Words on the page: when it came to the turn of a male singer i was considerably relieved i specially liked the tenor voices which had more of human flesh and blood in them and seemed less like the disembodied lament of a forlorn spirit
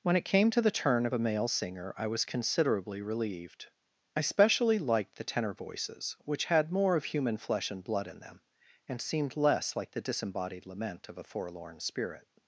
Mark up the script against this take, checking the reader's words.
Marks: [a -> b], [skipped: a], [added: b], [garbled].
when it came to the turn of a male singer i was considerably relieved i specially liked the tenor voices which had more of human flesh and blood in them and seemed less like the disembodied lament of a forlorn spirit